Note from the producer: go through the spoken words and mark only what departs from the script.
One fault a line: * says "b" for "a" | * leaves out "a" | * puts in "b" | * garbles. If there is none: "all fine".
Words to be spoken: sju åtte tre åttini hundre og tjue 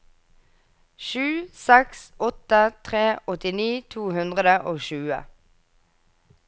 * puts in "seks"
* puts in "to"